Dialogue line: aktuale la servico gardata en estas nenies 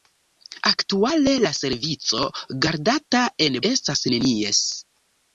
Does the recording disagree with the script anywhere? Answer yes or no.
no